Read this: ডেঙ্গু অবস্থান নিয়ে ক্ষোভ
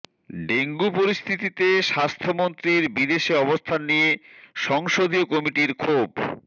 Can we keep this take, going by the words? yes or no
no